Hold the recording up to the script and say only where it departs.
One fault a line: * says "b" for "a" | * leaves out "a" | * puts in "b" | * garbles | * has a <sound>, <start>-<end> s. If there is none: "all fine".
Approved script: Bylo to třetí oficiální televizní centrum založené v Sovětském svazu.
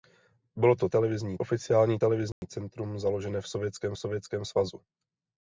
* says "televizní" for "třetí"
* has a dropout, 2.3-2.4 s
* puts in "Sovětském"